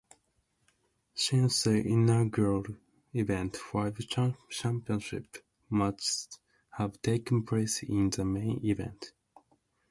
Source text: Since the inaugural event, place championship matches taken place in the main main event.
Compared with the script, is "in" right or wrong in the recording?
right